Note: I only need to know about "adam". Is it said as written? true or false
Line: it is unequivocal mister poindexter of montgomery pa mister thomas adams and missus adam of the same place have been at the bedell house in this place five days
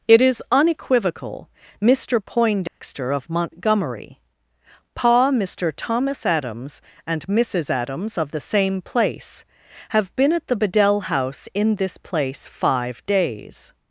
false